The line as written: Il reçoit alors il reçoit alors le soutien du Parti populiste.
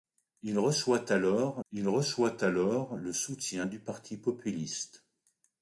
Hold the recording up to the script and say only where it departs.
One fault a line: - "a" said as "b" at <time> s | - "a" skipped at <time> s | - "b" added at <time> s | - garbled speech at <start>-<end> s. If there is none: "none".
none